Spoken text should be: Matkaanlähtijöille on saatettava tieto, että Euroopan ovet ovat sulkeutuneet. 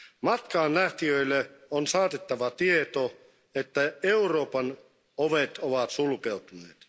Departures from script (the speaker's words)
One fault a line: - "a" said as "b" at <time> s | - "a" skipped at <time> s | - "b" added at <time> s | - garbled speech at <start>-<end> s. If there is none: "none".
none